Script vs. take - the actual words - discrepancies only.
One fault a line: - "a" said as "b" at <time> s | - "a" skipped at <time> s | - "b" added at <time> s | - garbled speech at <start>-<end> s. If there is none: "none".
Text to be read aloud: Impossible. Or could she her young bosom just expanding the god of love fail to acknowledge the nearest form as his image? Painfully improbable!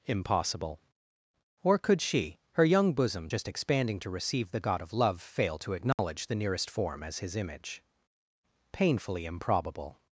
- "to receive" added at 4.0 s